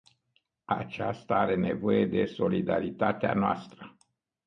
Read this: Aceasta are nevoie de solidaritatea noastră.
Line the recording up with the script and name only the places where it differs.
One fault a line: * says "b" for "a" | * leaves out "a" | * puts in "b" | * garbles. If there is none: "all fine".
all fine